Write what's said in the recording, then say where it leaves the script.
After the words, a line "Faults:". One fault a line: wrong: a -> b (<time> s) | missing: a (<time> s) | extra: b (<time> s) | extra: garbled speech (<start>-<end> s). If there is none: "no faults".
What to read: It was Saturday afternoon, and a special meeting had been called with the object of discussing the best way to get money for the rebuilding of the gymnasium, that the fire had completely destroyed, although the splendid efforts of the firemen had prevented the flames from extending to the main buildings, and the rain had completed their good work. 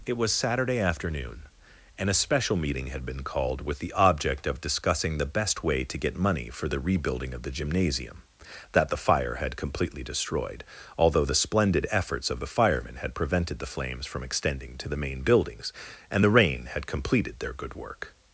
It was Saturday afternoon, and a special meeting had been called with the object of discussing the best way to get money for the rebuilding of the gymnasium, that the fire had completely destroyed, although the splendid efforts of the firemen had prevented the flames from extending to the main buildings, and the rain had completed their good work.
Faults:
no faults